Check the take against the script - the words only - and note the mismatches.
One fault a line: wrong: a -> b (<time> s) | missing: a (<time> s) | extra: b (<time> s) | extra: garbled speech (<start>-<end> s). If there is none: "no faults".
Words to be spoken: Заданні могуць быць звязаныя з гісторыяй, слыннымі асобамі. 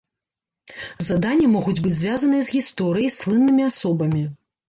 no faults